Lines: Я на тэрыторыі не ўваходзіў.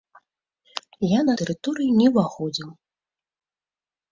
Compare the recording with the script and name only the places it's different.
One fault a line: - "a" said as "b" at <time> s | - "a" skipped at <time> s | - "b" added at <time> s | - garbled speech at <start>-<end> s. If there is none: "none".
none